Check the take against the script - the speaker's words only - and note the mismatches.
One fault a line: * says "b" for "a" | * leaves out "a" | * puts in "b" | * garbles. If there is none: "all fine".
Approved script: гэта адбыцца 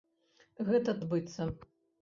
all fine